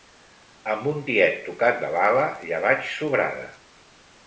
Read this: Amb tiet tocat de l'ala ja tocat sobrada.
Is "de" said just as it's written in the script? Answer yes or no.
yes